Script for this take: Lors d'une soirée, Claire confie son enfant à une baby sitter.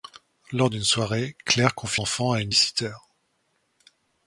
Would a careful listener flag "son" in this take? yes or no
yes